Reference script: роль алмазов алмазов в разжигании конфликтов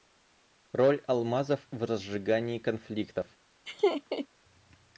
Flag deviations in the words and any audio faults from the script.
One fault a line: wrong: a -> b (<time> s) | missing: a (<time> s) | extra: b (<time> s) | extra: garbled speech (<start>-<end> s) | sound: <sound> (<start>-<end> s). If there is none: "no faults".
missing: алмазов (1.7 s)
sound: laugh (3.7-4.3 s)